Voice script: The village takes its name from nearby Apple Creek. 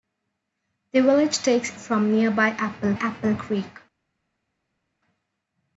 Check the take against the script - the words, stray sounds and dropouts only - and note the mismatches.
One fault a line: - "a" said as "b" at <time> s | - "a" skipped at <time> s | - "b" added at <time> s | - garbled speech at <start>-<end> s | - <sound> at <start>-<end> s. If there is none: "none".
- "its name" skipped at 1.8 s
- "Apple" added at 2.9 s